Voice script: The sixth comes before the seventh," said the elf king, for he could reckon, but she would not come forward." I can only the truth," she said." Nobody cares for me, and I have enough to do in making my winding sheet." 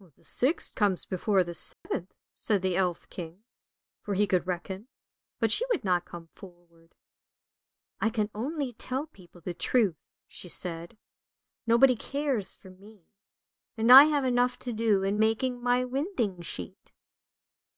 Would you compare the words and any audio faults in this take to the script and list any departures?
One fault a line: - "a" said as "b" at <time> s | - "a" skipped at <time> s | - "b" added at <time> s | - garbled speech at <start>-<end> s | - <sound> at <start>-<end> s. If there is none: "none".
- dropout at 1.7-1.8 s
- "tell people" added at 8.7 s